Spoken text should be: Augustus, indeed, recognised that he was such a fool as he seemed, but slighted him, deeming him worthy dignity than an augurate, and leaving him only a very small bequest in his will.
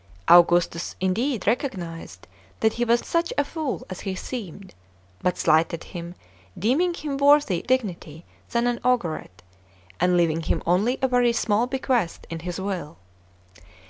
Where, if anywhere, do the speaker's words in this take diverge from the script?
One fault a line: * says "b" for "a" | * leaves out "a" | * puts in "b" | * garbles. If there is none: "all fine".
all fine